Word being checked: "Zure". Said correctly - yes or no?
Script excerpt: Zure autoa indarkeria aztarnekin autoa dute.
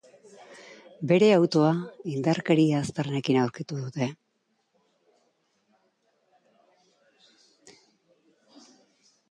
no